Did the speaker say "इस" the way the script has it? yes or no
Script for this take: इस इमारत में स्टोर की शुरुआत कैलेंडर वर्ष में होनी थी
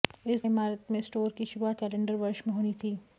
yes